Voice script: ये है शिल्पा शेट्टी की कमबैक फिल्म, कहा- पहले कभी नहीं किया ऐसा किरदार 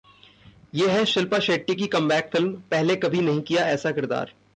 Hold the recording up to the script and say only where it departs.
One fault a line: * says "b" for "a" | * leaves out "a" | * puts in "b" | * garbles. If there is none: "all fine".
* leaves out "कहा"